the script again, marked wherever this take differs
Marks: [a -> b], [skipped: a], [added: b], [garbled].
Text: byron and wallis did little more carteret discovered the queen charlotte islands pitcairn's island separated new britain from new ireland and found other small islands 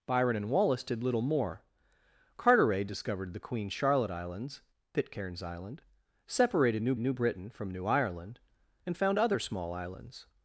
byron and wallis did little more carteret discovered the queen charlotte islands pitcairn's island separated new [added: new] britain from new ireland and found other small islands